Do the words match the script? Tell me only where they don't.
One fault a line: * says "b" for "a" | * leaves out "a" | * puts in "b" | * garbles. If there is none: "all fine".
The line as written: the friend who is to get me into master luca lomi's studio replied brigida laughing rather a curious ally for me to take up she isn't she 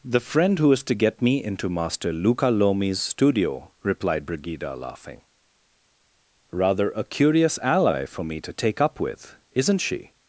* says "with" for "she"